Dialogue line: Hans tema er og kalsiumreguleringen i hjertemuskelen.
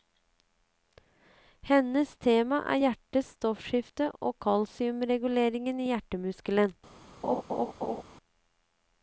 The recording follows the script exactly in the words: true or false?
false